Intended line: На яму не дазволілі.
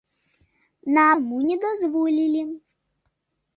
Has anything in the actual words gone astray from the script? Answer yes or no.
no